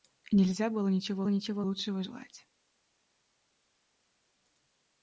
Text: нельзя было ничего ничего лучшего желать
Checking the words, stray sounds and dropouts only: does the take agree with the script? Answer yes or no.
yes